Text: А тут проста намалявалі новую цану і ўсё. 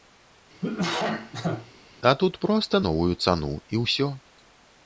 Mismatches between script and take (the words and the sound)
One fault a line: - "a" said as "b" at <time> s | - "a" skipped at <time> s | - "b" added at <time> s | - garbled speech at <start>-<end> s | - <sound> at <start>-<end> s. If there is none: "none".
- cough at 0.6-1.7 s
- "намалявалі" skipped at 2.8 s